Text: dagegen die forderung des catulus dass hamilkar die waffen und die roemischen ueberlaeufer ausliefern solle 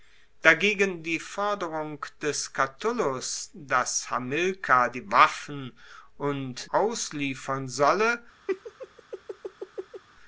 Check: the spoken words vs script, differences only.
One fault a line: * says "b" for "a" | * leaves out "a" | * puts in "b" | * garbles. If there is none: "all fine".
* leaves out "die roemischen ueberlaeufer"